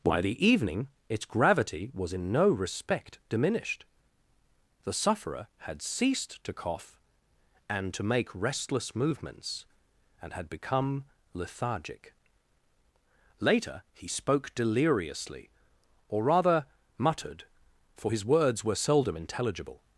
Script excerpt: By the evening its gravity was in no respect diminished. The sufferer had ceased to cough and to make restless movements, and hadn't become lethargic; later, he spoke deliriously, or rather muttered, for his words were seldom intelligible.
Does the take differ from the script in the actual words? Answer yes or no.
yes